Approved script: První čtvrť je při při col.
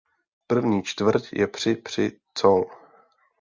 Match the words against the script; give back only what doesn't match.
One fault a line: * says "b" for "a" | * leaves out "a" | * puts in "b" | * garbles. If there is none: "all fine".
all fine